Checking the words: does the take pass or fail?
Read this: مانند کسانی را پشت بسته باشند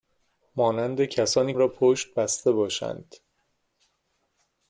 pass